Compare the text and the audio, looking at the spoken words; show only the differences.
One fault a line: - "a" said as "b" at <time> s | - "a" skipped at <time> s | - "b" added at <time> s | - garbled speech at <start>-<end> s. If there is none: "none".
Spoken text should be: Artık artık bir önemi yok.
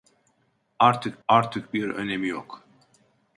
none